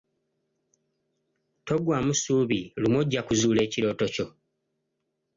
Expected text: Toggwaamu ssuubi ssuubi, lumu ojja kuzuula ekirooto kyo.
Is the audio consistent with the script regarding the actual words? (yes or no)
no